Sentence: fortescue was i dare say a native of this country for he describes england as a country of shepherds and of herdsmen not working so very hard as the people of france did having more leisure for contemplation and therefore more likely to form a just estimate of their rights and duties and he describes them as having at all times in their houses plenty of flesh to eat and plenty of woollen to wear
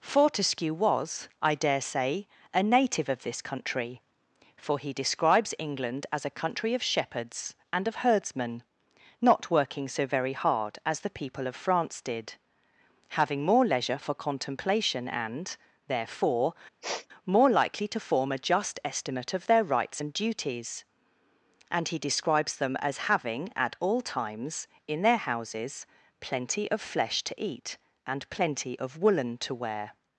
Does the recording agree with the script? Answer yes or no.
yes